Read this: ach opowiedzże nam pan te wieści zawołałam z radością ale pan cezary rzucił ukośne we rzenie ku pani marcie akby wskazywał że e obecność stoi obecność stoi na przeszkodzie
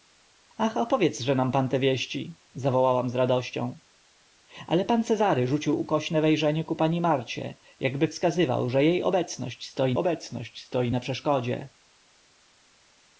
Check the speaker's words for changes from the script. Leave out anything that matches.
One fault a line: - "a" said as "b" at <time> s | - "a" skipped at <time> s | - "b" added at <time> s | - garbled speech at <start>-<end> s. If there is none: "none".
none